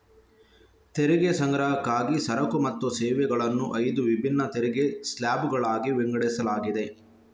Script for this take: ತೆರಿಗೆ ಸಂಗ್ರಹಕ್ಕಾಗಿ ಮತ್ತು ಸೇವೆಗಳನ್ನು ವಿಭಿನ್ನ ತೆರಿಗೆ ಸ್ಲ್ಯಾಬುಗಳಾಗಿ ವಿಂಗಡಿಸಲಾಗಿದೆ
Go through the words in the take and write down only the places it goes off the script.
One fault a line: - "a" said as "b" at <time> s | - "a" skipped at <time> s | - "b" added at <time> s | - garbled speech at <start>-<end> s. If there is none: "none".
- "ಸರಕು" added at 2.2 s
- "ಐದು" added at 3.8 s